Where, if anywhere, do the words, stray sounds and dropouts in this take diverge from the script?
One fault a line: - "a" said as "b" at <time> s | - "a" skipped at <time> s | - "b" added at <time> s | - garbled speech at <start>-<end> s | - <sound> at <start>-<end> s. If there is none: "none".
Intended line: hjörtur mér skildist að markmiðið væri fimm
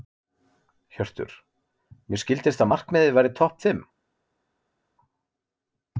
- "topp" added at 3.4 s